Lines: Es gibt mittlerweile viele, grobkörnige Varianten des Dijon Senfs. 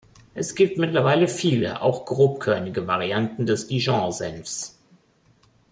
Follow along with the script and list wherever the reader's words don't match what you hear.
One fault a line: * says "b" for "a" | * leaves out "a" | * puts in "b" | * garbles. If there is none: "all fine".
* puts in "auch"